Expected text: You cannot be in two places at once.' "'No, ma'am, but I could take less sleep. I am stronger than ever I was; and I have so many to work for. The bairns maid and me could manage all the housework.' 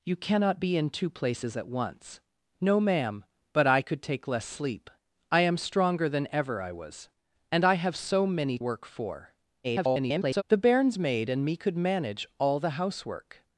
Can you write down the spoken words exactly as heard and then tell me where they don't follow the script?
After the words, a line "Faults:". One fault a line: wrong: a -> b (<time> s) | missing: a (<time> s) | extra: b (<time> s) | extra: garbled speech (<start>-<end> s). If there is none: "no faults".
You cannot be in two places at once.' "'No, ma'am, but I could take less sleep. I am stronger than ever I was; and I have so many work for. [garbled] The bairns maid and me could manage all the housework.'
Faults:
missing: to (8.6 s)
extra: garbled speech (9.6-10.4 s)